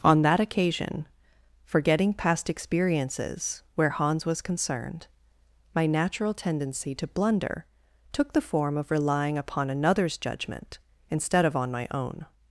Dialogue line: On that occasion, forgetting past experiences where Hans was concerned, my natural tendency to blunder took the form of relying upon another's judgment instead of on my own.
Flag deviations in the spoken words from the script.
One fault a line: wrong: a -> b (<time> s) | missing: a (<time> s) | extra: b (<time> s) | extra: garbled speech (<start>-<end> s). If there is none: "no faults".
no faults